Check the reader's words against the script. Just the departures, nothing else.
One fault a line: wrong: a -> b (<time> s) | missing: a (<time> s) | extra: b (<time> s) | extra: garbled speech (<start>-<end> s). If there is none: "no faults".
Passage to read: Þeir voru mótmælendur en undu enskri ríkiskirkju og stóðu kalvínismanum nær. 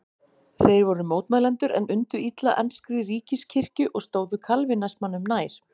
extra: illa (2.3 s)